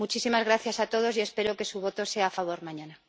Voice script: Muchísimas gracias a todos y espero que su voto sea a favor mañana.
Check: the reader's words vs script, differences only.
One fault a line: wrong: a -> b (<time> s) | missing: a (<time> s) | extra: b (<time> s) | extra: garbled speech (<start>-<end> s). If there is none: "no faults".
no faults